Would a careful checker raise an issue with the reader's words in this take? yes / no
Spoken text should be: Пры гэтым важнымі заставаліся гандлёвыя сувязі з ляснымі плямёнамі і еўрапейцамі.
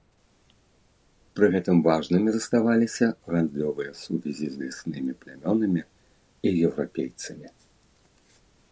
no